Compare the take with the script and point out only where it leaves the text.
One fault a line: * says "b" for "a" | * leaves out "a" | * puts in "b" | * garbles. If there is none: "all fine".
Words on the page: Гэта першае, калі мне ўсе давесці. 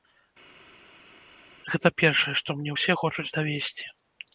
* says "што" for "калі"
* puts in "хочуць"